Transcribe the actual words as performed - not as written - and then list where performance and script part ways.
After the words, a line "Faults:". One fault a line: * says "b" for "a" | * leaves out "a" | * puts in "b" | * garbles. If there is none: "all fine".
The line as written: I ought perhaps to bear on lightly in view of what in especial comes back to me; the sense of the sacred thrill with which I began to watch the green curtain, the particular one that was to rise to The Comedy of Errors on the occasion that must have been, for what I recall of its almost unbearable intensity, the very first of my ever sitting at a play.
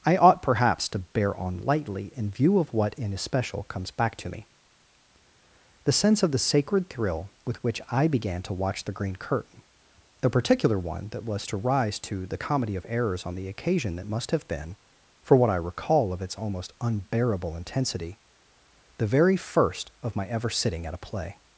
I ought perhaps to bear on lightly in view of what in especial comes back to me; the sense of the sacred thrill with which I began to watch the green curtain, the particular one that was to rise to The Comedy of Errors on the occasion that must have been, for what I recall of its almost unbearable intensity, the very first of my ever sitting at a play.
Faults:
all fine